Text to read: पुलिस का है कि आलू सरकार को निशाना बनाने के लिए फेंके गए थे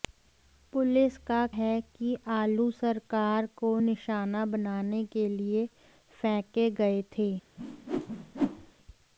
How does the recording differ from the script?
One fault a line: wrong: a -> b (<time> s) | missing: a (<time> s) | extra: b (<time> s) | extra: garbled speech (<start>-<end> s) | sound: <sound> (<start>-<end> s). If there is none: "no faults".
sound: whoosh (7.6-8.7 s)